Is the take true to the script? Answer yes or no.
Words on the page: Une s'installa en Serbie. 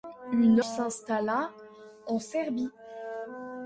yes